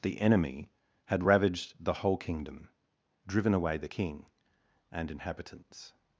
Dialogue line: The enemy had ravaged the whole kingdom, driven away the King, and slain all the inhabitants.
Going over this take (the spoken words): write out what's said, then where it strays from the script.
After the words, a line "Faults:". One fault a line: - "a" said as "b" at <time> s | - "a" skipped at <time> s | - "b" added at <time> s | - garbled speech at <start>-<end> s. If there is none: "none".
The enemy had ravaged the whole kingdom, driven away the King, and inhabitants.
Faults:
- "slain all the" skipped at 5.1 s